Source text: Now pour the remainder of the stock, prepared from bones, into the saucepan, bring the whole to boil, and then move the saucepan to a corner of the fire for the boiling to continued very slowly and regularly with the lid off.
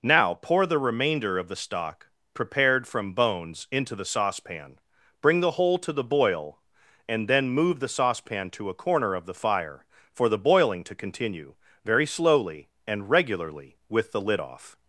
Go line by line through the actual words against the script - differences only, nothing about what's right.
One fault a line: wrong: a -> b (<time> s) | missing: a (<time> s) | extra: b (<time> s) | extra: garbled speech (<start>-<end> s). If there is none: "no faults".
extra: the (5.9 s)
wrong: continued -> continue (10.9 s)